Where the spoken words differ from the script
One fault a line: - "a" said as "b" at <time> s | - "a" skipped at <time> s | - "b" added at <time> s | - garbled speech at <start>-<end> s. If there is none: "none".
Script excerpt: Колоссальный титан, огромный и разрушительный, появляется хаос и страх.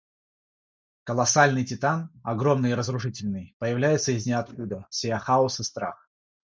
- "из ниоткуда сея" added at 4.1 s